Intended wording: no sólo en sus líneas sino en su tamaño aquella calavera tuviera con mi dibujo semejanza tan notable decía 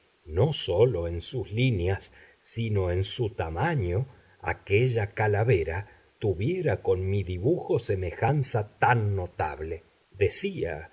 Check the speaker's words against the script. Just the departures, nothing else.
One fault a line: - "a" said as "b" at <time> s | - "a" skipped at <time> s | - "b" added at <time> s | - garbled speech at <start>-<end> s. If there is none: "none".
none